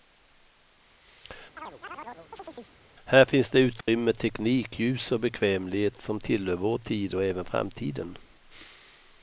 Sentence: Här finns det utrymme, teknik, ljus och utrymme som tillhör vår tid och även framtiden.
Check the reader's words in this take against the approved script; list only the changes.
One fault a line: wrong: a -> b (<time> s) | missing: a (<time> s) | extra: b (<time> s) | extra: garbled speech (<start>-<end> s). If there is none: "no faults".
wrong: utrymme -> bekvämlighet (5.2 s)